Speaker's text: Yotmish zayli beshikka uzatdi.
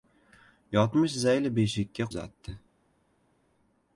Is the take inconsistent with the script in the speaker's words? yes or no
no